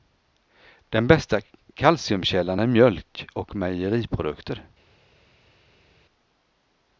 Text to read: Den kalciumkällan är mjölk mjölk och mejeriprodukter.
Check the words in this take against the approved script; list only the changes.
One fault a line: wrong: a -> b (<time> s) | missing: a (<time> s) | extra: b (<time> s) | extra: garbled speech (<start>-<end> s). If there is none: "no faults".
extra: bästa (1.1 s)
missing: mjölk (3.3 s)